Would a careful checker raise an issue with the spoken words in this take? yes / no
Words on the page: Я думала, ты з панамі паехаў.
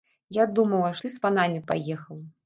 no